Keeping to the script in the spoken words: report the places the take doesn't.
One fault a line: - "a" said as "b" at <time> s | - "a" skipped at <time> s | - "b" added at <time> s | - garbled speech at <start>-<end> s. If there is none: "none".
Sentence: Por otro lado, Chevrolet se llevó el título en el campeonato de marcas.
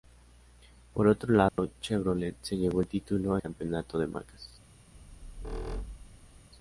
- "en el" skipped at 3.4 s